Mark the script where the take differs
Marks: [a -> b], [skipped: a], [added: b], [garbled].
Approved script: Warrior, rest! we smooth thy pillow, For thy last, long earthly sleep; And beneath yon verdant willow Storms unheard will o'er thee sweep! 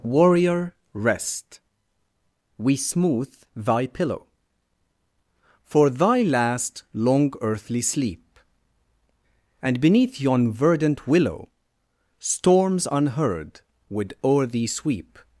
Warrior, rest! we smooth thy pillow, For thy last, long earthly sleep; And beneath yon verdant willow Storms unheard [will -> would] o'er thee sweep!